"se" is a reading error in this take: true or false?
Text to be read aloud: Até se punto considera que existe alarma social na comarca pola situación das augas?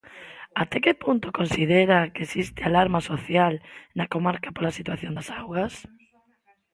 true